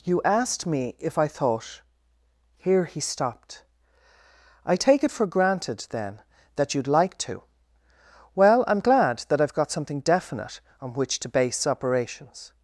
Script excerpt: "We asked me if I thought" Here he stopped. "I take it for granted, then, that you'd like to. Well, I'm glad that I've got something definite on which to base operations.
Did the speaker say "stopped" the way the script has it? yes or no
yes